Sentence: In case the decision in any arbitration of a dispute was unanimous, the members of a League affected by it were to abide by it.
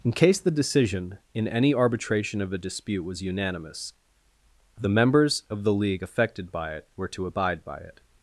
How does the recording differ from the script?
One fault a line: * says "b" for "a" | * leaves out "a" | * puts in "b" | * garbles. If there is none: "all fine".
* says "the" for "a"